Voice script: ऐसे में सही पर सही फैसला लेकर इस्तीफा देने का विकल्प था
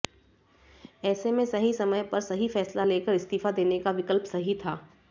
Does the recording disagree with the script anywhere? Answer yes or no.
yes